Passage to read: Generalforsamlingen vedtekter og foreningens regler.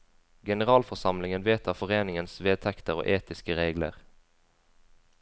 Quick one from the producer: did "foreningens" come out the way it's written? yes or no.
no